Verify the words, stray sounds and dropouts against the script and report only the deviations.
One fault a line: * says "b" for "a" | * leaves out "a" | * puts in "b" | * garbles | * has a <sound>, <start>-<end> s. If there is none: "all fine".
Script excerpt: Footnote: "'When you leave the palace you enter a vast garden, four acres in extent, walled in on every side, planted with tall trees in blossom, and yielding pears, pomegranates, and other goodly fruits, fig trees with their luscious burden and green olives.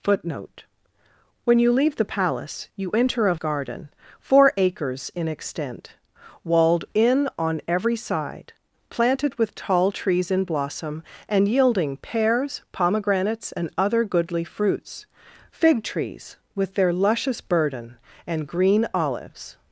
* leaves out "vast"